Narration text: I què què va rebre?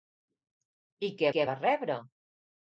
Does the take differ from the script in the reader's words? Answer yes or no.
no